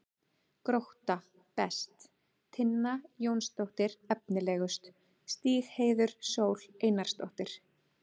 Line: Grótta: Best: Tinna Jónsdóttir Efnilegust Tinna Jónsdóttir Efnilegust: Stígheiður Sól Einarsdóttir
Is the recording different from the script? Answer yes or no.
yes